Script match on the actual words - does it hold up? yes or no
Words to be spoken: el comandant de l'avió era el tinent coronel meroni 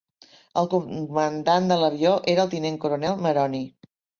yes